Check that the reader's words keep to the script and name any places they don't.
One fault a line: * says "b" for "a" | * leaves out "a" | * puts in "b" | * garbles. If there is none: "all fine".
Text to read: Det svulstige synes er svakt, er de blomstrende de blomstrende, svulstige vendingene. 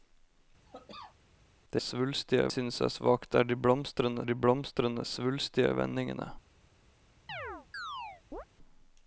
all fine